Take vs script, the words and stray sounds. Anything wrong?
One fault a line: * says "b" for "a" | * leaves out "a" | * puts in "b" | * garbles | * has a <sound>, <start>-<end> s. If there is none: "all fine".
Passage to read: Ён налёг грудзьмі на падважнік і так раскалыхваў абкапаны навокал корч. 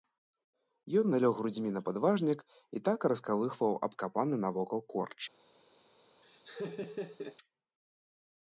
* has a laugh, 6.2-7.4 s